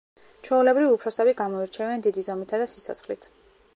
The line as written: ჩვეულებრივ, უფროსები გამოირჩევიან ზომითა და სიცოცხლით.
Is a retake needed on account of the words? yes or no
yes